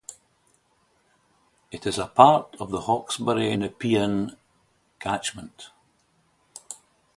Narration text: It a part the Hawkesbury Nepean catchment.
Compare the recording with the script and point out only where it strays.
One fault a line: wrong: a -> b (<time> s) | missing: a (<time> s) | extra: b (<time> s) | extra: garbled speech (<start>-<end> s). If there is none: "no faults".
extra: is (1.9 s)
extra: of (2.6 s)